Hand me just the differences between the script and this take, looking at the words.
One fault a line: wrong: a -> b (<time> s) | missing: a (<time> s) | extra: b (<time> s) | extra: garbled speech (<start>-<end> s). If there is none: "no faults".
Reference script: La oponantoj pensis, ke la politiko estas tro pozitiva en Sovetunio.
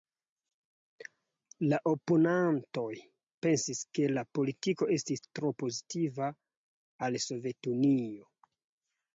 wrong: estas -> estis (5.0 s)
wrong: en -> al (7.1 s)